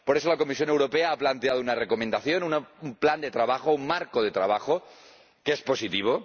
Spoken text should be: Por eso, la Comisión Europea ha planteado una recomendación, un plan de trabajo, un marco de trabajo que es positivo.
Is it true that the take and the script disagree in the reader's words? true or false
false